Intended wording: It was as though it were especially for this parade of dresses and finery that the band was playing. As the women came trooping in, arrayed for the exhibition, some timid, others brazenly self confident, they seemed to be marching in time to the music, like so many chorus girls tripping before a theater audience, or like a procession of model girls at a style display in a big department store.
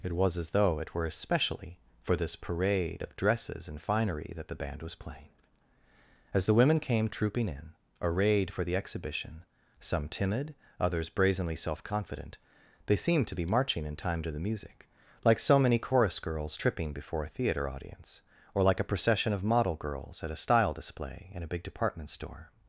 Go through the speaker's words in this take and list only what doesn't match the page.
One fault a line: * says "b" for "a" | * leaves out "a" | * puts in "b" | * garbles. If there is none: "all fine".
all fine